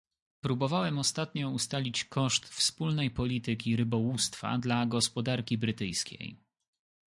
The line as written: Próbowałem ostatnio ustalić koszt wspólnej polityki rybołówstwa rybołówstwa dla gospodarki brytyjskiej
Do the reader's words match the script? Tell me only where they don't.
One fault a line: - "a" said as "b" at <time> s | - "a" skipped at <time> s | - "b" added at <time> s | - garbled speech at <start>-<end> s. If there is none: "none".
- "rybołówstwa" skipped at 4.6 s